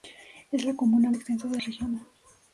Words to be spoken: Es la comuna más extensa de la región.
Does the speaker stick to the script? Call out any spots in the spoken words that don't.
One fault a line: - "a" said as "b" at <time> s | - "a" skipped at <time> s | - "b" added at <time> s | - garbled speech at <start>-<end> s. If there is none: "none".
- "más" skipped at 1.1 s
- "la" skipped at 1.6 s